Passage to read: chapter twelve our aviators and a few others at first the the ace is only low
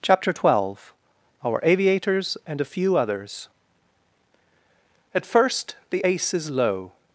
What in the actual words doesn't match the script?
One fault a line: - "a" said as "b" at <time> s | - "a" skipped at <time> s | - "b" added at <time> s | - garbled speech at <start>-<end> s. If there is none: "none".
- "the" skipped at 6.0 s
- "only" skipped at 6.5 s